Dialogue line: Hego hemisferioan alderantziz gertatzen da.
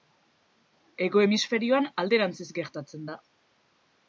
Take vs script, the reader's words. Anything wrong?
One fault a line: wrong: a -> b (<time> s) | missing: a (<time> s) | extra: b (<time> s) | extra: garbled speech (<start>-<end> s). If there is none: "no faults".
no faults